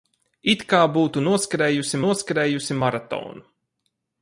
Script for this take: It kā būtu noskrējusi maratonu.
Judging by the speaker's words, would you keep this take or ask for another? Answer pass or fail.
fail